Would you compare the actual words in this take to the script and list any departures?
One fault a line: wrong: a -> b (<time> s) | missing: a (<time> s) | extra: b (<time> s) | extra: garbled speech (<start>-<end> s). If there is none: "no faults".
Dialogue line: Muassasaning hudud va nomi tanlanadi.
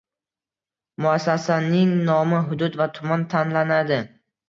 extra: nomi (2.1 s)
wrong: nomi -> tuman (3.0 s)